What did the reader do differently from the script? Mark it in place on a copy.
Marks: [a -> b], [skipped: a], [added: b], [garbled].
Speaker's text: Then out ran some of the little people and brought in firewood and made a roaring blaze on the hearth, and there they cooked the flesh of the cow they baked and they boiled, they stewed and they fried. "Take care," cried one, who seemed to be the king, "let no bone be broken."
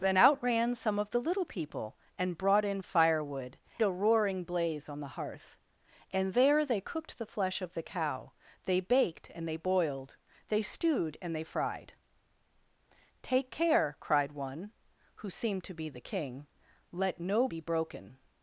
Then out ran some of the little people and brought in firewood [skipped: and made] a roaring blaze on the hearth, and there they cooked the flesh of the cow they baked and they boiled, they stewed and they fried. "Take care," cried one, who seemed to be the king, "let no [skipped: bone] be broken."